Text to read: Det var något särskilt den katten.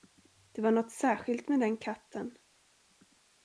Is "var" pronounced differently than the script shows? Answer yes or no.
no